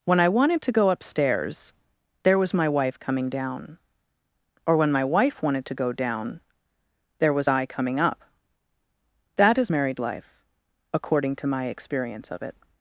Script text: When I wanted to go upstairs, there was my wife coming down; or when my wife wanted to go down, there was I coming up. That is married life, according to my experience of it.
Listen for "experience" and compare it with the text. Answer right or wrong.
right